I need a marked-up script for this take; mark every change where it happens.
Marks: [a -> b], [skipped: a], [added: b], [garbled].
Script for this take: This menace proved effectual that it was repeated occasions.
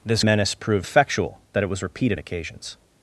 This menace proved effectual that it was repeated occasions.